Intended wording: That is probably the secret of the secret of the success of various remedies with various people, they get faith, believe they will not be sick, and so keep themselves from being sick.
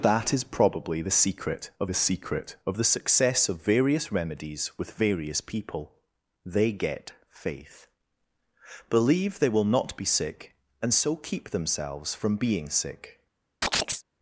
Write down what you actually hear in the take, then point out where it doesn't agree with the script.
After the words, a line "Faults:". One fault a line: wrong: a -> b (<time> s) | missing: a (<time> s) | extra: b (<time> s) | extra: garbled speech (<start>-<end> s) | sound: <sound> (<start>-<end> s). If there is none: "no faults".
That is probably the secret of the secret of the success of various remedies with various people, they get faith, believe they will not be sick, and so keep themselves from being sick.
Faults:
sound: chirp (13.6-14.0 s)